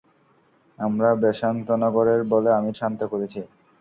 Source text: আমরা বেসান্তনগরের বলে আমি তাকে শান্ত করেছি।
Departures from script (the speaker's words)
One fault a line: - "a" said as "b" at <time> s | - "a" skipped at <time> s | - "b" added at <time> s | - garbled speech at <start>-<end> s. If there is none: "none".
- "তাকে" skipped at 2.7 s